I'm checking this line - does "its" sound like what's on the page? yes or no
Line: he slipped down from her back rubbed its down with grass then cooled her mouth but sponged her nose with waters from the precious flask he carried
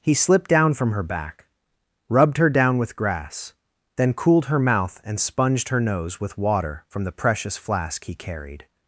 no